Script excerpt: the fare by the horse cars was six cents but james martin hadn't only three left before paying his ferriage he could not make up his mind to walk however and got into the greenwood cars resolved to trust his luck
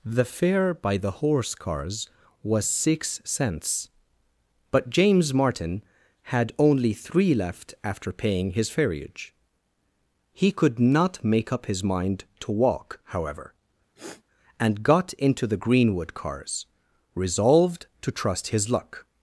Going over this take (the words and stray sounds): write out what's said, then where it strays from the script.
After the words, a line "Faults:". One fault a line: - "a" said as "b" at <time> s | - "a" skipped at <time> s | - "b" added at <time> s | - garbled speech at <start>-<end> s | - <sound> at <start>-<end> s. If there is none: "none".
the fare by the horse cars was six cents but james martin had only three left after paying his ferriage he could not make up his mind to walk however and got into the greenwood cars resolved to trust his luck
Faults:
- "hadn't" said as "had" at 6.2 s
- "before" said as "after" at 7.8 s
- sniff at 14.0-14.2 s